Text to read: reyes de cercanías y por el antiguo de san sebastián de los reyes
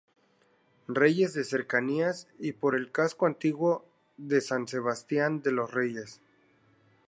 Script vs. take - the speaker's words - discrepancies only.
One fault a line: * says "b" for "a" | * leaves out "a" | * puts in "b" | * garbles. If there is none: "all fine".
* puts in "casco"